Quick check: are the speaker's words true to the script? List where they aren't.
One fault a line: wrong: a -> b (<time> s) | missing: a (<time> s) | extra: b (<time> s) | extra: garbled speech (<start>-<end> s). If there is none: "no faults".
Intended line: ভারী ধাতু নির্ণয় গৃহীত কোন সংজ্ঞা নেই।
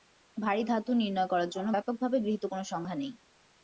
extra: করার জন্য ব্যাপকভাবে (1.3 s)